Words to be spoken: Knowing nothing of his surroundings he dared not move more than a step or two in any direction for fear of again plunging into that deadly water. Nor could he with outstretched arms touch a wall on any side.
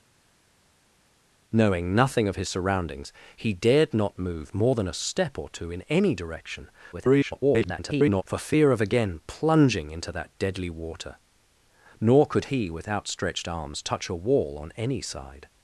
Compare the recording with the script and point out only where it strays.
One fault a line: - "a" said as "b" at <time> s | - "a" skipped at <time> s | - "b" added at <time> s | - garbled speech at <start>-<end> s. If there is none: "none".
- garbled speech at 6.9-8.2 s